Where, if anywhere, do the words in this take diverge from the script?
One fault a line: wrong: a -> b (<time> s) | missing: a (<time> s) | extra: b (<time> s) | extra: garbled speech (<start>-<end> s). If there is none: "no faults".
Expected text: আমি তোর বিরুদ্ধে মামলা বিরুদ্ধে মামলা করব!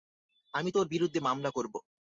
missing: বিরুদ্ধে মামলা (1.5 s)